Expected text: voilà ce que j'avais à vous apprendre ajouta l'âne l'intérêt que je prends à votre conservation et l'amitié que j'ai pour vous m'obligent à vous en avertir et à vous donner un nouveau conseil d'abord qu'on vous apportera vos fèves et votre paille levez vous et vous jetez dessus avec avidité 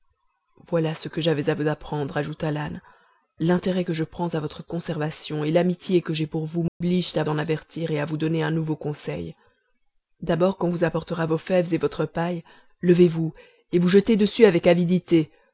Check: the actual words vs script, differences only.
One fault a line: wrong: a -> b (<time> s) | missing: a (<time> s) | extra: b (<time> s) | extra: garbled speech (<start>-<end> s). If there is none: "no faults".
missing: vous (7.2 s)